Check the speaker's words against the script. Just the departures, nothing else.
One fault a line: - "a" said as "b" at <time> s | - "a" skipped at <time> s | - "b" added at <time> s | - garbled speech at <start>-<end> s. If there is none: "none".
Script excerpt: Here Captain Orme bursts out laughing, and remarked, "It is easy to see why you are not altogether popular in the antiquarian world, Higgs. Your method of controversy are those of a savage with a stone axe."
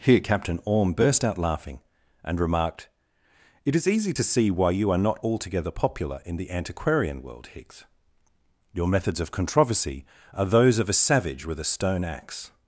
- "bursts" said as "burst" at 0.9 s
- "method" said as "methods" at 8.9 s